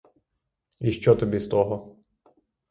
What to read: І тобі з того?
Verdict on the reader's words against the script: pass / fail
fail